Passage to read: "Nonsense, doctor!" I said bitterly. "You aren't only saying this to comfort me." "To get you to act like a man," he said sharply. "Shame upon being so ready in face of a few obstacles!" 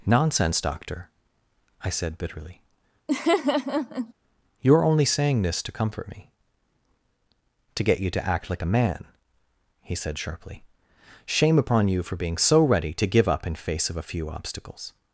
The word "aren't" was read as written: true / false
false